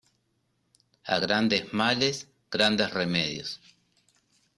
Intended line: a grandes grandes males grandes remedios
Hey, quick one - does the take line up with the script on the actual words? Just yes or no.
no